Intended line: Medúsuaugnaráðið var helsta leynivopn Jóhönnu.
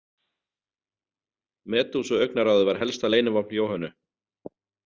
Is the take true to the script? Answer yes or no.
yes